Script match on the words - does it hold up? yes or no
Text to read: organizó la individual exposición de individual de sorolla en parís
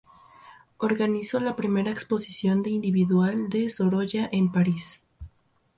no